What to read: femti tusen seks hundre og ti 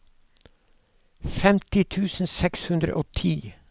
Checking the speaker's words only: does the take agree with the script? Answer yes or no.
yes